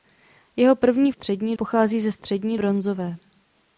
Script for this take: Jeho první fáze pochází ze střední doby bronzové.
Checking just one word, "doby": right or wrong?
wrong